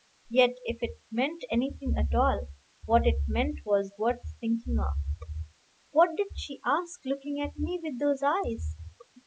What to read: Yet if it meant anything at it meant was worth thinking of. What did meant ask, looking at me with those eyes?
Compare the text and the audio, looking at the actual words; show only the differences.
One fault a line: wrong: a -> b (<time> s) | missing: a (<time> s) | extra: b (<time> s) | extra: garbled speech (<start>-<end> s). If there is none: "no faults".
extra: all what (2.1 s)
wrong: meant -> she (6.4 s)